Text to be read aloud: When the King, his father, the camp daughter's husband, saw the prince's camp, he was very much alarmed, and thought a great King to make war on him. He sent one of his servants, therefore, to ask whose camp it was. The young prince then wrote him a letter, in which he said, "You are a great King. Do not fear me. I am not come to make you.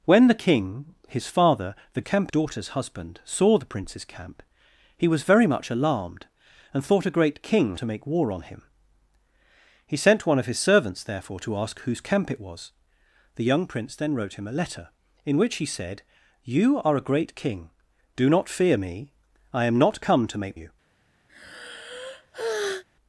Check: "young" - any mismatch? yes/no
no